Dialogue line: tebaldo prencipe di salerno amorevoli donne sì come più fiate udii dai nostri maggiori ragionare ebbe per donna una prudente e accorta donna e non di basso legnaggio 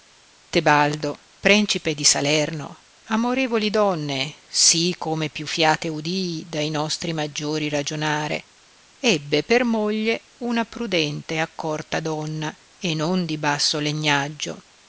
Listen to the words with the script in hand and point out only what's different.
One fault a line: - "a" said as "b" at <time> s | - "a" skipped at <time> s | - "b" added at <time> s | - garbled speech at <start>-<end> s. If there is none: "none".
- "donna" said as "moglie" at 9.6 s